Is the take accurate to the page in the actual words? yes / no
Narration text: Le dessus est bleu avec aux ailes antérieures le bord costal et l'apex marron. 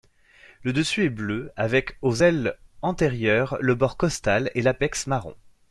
yes